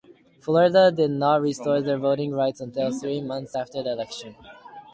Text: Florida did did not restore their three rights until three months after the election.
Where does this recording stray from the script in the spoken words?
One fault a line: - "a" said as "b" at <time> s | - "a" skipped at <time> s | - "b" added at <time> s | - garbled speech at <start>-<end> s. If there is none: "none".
- "did" skipped at 1.1 s
- "three" said as "voting" at 2.0 s